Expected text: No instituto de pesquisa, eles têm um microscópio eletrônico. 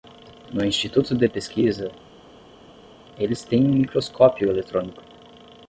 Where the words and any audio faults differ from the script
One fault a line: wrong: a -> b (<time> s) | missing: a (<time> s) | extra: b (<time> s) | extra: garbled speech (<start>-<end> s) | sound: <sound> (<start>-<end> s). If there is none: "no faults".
no faults